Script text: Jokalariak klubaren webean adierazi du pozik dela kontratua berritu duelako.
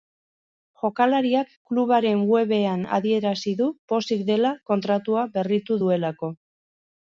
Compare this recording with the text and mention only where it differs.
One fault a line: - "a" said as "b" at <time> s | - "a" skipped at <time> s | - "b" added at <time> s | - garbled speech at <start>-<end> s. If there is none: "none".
none